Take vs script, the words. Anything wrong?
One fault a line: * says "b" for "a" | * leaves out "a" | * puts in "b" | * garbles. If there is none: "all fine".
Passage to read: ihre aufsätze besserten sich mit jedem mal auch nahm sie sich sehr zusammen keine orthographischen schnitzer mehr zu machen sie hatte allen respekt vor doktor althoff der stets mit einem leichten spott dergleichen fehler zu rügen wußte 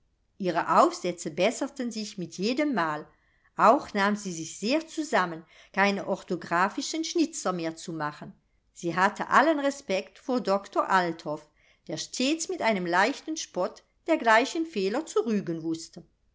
all fine